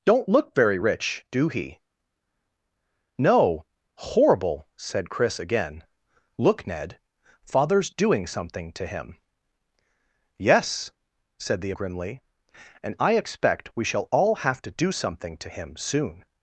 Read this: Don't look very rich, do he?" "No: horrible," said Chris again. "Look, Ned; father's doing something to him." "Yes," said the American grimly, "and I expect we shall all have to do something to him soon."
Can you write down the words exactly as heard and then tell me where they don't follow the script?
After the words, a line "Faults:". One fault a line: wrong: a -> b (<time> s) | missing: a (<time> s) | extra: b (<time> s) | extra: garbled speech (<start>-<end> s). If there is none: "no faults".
Don't look very rich, do he?" "No: horrible," said Chris again. "Look, Ned; father's doing something to him." "Yes," said the Grimly, "and I expect we shall all have to do something to him soon."
Faults:
missing: American (11.7 s)